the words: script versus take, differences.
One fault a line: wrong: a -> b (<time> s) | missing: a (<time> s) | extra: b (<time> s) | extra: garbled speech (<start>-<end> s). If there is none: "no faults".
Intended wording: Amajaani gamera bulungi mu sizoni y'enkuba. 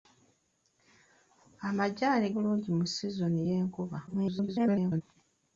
missing: gamera (2.3 s)
extra: garbled speech (4.1-5.0 s)